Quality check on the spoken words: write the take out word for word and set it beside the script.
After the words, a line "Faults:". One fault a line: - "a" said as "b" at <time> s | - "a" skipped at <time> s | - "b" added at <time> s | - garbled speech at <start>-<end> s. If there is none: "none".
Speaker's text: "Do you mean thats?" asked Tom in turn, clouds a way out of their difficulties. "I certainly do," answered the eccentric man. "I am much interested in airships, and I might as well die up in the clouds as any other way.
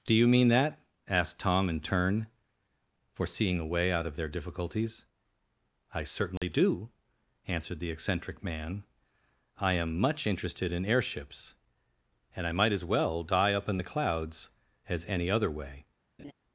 "Do you mean that?" asked Tom in turn, foreseeing a way out of their difficulties. "I certainly do," answered the eccentric man. "I am much interested in airships, and I might as well die up in the clouds as any other way.
Faults:
- "thats" said as "that" at 0.5 s
- "clouds" said as "foreseeing" at 3.1 s